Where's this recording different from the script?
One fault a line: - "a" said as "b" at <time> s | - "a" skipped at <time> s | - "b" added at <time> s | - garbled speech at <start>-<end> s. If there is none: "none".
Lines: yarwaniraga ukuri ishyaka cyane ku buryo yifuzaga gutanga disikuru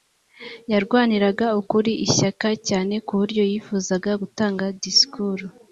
none